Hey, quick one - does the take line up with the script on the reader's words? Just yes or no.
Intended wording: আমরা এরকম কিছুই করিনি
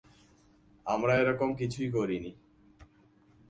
yes